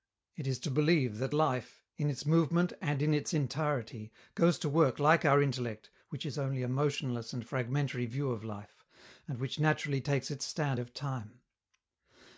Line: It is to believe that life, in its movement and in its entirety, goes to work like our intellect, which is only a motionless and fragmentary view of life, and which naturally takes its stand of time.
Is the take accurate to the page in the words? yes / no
yes